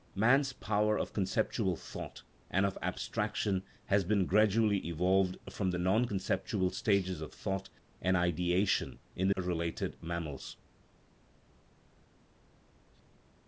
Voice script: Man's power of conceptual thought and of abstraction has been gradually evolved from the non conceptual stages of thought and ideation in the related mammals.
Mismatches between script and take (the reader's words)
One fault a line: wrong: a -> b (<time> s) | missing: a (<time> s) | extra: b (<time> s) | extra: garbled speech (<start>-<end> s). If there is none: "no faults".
no faults